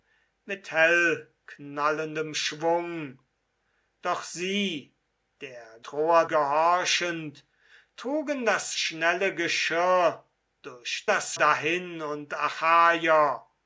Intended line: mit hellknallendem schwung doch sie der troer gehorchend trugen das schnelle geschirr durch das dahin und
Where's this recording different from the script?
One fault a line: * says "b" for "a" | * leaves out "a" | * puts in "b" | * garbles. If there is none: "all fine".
all fine